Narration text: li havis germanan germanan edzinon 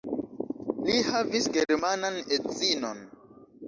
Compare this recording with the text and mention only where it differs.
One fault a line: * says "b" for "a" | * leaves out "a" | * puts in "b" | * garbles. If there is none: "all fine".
* leaves out "germanan"